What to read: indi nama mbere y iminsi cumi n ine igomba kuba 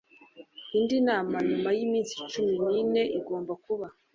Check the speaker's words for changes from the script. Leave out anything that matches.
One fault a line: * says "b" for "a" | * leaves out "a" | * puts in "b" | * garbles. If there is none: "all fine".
* says "nyuma" for "mbere"